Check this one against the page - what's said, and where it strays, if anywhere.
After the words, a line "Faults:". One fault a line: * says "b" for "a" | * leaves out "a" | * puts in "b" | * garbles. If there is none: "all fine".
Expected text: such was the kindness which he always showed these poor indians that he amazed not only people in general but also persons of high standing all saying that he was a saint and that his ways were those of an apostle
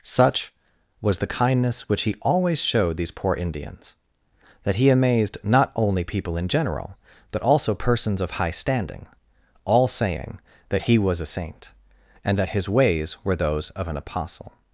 such was the kindness which he always showed these poor indians that he amazed not only people in general but also persons of high standing all saying that he was a saint and that his ways were those of an apostle
Faults:
all fine